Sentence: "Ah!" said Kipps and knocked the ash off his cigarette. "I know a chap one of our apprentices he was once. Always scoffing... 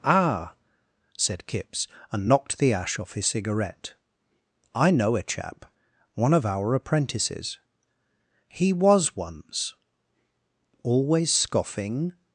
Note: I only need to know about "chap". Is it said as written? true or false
true